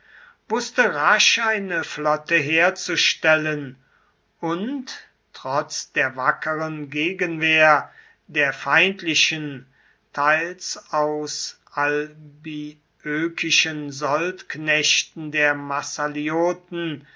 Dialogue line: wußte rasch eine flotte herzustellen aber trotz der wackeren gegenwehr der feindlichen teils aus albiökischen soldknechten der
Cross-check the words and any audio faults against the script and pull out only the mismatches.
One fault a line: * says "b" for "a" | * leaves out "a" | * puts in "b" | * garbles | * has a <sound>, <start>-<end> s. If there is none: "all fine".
* says "und" for "aber"